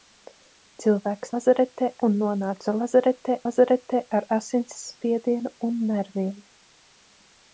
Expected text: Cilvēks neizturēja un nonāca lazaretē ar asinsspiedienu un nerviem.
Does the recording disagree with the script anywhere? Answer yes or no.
yes